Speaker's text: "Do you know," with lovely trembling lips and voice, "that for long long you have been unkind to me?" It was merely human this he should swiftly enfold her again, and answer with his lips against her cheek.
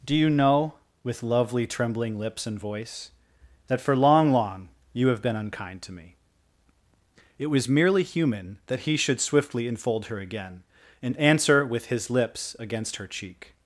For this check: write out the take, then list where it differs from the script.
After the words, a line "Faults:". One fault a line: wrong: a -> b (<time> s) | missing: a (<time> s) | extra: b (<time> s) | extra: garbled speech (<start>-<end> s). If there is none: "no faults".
"Do you know," with lovely trembling lips and voice, "that for long long you have been unkind to me?" It was merely human that he should swiftly enfold her again, and answer with his lips against her cheek.
Faults:
wrong: this -> that (8.7 s)